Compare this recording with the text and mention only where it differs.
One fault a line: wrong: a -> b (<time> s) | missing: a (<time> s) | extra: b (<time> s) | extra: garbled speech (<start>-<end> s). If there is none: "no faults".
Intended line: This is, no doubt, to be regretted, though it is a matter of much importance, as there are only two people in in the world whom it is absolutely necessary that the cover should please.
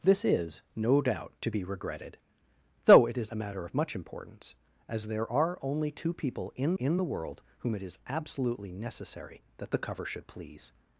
no faults